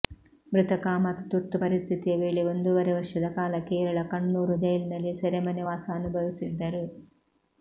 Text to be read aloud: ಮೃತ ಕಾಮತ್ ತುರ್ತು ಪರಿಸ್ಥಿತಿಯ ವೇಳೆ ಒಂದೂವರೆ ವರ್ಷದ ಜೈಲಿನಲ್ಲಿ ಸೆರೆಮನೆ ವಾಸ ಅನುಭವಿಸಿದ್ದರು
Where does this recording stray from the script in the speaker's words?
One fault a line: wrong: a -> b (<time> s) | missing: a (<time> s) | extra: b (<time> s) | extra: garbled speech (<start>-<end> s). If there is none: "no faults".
extra: ಕಾಲ ಕೇರಳ ಕಣ್ಣೂರು (3.3 s)